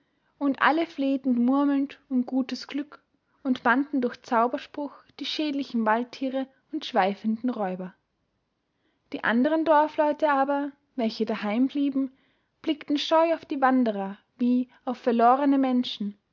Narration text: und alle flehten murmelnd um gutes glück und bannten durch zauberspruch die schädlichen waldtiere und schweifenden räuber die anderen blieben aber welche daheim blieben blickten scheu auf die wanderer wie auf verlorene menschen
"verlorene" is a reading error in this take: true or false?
false